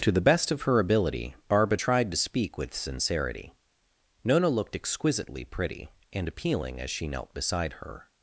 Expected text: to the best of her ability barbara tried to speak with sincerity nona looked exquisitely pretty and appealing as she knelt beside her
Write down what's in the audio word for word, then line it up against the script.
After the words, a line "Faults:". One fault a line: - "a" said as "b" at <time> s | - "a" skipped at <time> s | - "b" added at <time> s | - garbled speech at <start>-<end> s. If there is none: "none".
to the best of her ability barbara tried to speak with sincerity nona looked exquisitely pretty and appealing as she knelt beside her
Faults:
none